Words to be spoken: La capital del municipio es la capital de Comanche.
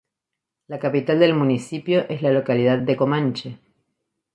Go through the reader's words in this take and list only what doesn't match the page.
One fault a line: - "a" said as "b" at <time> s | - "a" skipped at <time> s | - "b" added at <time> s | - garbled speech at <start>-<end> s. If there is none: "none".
- "capital" said as "localidad" at 2.3 s